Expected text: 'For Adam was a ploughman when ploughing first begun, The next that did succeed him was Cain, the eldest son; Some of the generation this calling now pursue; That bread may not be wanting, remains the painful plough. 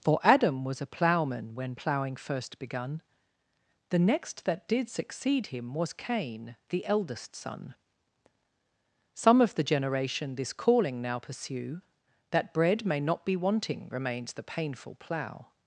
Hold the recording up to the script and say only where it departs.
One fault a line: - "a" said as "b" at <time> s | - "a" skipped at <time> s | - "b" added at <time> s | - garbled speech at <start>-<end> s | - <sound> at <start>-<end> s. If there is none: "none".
none